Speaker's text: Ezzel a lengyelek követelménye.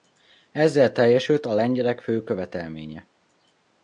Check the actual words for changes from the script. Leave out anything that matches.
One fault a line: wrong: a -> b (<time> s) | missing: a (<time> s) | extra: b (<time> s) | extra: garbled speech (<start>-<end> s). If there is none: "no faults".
extra: teljesült (0.9 s)
extra: fő (2.0 s)